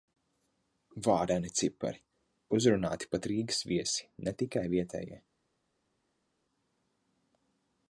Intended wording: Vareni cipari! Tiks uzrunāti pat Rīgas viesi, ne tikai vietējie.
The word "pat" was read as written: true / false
true